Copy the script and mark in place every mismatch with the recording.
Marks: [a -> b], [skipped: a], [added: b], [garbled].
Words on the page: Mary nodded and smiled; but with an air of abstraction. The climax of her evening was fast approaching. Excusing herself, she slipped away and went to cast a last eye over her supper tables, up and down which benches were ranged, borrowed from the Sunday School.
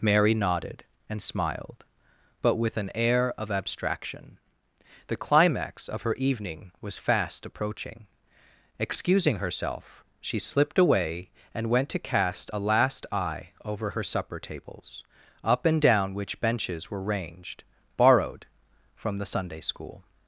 Mary nodded and smiled; but with an air of abstraction. The climax of her evening was fast approaching. Excusing herself, she slipped away and went to cast a last eye over her supper tables, up and down which benches were ranged, borrowed from the Sunday School.